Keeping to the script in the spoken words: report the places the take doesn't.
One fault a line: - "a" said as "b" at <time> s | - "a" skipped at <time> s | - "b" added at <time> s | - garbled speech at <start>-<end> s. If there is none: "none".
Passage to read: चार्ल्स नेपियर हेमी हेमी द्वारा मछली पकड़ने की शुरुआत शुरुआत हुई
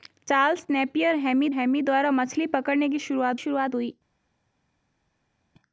none